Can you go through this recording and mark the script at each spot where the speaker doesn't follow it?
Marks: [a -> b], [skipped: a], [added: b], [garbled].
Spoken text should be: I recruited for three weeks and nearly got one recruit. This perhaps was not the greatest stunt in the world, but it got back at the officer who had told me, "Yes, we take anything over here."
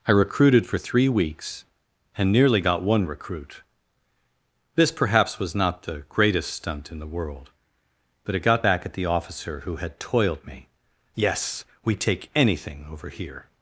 I recruited for three weeks and nearly got one recruit. This perhaps was not the greatest stunt in the world, but it got back at the officer who had [told -> toiled] me, "Yes, we take anything over here."